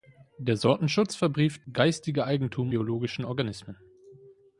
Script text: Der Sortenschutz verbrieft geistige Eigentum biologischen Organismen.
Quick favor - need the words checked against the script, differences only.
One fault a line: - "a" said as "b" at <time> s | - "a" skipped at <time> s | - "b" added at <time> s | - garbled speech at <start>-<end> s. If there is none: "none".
none